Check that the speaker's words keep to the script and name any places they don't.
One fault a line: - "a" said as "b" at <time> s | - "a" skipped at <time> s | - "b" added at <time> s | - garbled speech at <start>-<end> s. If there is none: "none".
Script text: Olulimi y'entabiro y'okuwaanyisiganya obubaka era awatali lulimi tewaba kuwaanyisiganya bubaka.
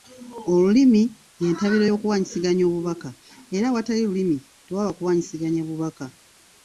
none